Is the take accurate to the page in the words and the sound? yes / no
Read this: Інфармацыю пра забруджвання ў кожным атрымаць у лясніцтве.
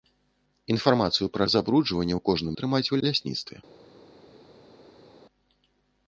yes